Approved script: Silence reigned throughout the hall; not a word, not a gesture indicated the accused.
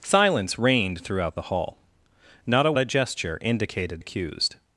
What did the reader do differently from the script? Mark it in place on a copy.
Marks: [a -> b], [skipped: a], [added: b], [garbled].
Silence reigned throughout the hall; not a [skipped: word, not] a gesture indicated [skipped: the] accused.